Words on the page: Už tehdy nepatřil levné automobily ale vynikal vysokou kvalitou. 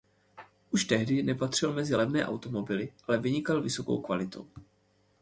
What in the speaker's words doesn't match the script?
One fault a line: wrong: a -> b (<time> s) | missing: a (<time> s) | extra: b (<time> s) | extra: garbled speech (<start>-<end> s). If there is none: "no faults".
extra: mezi (1.7 s)